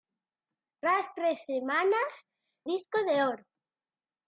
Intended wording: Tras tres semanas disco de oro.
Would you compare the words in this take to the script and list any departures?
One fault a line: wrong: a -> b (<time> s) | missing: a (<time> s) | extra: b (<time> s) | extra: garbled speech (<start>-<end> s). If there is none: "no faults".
no faults